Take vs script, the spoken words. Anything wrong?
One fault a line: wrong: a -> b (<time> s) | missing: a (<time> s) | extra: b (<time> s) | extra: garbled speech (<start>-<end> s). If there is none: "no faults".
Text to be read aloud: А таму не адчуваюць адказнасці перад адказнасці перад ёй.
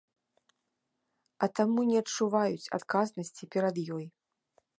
missing: адказнасці перад (3.8 s)